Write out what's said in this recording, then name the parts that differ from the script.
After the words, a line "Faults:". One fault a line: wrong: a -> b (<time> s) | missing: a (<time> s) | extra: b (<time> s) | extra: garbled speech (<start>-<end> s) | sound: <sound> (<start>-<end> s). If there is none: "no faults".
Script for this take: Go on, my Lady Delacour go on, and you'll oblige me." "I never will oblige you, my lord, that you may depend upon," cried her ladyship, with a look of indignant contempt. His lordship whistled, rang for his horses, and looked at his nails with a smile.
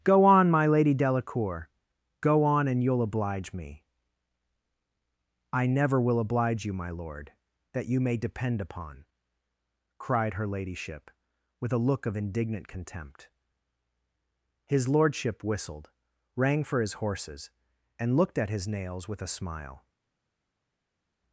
Go on, my Lady Delacour go on, and you'll oblige me." "I never will oblige you, my lord, that you may depend upon," cried her ladyship, with a look of indignant contempt. His lordship whistled, rang for his horses, and looked at his nails with a smile.
Faults:
no faults